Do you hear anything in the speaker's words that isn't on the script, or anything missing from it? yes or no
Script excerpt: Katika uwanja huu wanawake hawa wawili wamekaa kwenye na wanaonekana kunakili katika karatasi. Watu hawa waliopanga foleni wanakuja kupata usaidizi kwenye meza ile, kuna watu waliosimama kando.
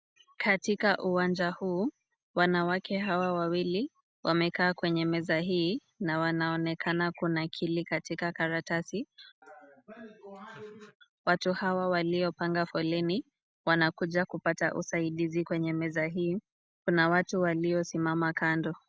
yes